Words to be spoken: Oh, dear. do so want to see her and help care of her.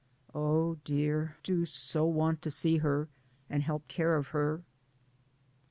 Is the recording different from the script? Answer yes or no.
no